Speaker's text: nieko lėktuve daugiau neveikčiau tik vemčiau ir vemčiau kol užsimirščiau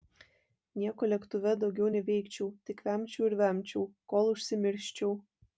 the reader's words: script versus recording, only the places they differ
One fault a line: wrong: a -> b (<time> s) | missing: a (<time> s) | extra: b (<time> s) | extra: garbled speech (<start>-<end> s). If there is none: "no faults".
no faults